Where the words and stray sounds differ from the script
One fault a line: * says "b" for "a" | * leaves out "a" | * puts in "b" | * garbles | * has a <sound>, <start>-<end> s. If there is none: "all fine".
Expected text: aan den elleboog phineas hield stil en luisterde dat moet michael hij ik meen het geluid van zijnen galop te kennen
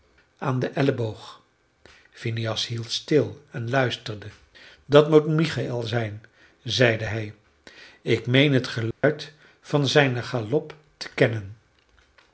* puts in "zijn zeide"
* has a dropout, 8.9-9.0 s